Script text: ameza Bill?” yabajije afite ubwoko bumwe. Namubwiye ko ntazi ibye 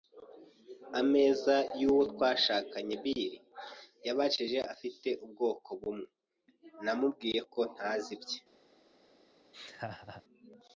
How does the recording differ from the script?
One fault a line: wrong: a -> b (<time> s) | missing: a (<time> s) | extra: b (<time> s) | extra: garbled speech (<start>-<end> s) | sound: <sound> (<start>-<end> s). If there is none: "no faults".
extra: y'uwo twashakanye (1.8 s)
sound: laugh (9.5-10.2 s)